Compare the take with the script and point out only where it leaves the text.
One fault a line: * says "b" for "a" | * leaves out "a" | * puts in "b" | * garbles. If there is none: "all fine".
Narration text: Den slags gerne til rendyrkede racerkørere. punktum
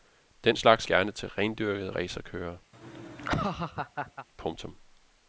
all fine